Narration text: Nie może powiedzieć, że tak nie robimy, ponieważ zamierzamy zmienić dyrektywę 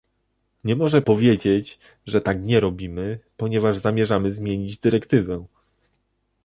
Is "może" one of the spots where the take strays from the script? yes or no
no